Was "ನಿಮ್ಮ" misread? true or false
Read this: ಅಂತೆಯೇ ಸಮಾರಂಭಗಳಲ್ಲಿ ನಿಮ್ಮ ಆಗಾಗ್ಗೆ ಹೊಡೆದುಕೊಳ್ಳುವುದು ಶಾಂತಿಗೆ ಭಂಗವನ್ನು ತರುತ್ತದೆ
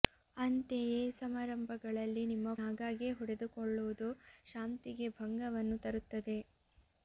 false